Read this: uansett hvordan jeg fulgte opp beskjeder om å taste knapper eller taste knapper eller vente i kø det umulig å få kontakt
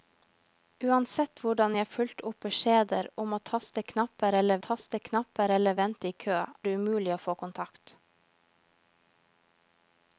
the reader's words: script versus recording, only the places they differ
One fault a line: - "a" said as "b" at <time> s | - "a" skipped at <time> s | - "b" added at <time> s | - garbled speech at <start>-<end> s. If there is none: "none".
none